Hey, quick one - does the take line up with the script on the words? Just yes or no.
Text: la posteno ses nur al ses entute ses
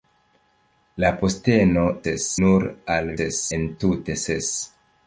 yes